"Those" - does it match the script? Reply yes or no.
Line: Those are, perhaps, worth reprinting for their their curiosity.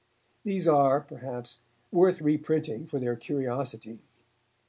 no